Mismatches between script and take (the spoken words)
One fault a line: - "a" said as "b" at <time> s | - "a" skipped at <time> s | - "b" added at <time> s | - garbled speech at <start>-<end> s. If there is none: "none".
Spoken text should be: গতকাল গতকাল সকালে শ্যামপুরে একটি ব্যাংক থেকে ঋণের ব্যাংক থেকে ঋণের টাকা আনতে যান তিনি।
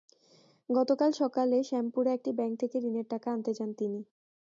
- "গতকাল" skipped at 1.1 s
- "ব্যাংক থেকে ঋণের" skipped at 3.1 s